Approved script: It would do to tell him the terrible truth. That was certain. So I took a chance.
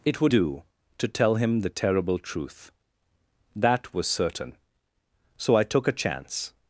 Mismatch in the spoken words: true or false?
false